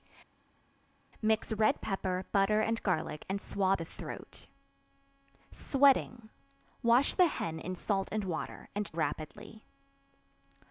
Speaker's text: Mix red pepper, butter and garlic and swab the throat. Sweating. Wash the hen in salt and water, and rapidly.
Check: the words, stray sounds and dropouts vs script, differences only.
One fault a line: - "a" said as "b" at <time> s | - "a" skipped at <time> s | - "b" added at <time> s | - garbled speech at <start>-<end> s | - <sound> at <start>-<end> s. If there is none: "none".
none